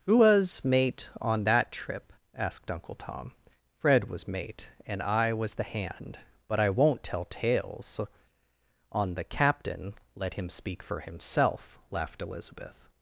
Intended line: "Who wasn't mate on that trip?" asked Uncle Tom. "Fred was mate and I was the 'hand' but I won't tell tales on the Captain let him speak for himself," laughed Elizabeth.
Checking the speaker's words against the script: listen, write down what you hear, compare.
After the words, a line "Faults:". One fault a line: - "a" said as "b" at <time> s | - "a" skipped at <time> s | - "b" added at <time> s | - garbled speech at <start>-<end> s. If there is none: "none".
"Who was mate on that trip?" asked Uncle Tom. "Fred was mate and I was the 'hand' but I won't tell tales on the Captain let him speak for himself," laughed Elizabeth.
Faults:
- "wasn't" said as "was" at 0.1 s